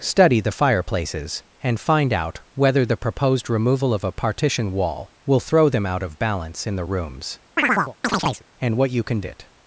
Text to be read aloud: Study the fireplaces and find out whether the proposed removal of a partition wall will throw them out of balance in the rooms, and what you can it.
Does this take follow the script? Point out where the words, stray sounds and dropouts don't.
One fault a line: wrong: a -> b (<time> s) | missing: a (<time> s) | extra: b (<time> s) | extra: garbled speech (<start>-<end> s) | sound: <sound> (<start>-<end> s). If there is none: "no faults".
sound: chirp (7.6-8.4 s)